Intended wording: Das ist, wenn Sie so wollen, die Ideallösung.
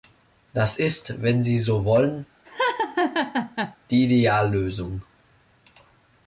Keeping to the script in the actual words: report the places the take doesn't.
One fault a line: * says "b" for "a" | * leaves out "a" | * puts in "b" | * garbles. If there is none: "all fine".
all fine